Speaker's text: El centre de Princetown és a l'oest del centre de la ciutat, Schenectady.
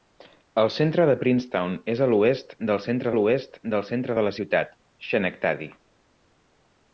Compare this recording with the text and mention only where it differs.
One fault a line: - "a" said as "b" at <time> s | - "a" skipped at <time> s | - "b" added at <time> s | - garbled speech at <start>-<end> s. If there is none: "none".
- "l'oest del centre" added at 3.2 s